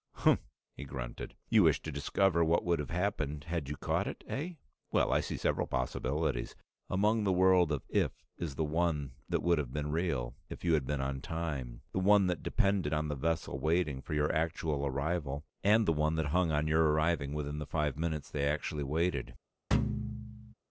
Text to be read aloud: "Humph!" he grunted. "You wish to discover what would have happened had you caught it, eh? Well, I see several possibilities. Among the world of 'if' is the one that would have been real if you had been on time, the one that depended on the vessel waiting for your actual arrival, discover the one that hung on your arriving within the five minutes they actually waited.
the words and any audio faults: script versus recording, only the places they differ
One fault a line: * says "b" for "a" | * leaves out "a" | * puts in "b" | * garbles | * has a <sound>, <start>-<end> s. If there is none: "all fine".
* says "and" for "discover"
* has a thud, 19.7-20.5 s